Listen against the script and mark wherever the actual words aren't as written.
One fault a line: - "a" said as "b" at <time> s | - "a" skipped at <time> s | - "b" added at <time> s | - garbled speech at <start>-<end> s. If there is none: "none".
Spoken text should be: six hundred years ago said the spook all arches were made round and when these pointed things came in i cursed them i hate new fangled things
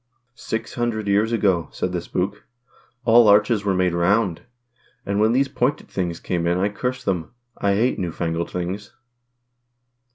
none